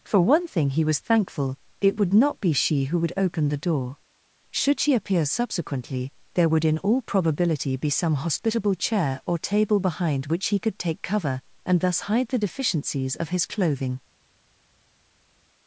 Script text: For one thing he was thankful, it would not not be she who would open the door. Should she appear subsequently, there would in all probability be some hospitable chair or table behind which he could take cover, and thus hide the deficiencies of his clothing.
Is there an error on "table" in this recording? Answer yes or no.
no